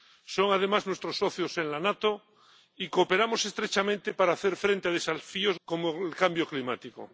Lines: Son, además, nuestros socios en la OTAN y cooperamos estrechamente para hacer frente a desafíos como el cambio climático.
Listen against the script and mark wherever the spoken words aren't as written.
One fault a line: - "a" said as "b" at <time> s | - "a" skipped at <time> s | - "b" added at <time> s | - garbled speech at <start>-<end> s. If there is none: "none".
none